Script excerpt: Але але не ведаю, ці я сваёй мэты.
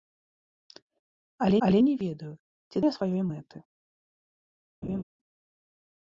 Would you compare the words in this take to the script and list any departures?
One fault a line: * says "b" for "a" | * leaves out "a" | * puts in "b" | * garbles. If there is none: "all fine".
all fine